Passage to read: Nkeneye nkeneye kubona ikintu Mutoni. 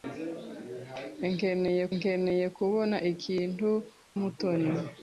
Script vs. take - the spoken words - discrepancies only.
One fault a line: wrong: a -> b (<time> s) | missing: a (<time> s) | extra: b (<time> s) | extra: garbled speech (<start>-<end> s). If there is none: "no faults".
no faults